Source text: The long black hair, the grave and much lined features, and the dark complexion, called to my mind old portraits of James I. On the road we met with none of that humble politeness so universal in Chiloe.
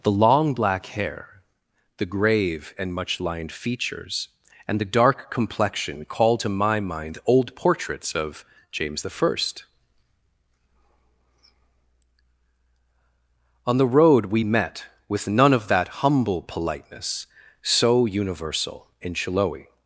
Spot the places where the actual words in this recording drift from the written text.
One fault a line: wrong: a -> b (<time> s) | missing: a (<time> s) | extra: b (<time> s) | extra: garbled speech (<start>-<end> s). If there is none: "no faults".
no faults